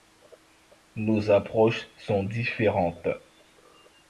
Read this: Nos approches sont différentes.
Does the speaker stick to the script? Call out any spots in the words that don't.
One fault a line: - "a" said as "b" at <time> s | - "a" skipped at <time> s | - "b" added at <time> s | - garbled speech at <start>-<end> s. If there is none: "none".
none